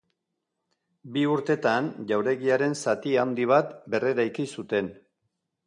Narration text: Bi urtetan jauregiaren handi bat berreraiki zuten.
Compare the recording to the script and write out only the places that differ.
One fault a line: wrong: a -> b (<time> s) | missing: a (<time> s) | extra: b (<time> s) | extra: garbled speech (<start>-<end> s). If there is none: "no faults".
extra: zati (2.8 s)